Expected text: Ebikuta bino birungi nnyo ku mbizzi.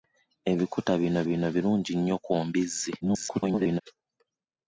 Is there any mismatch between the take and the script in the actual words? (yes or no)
yes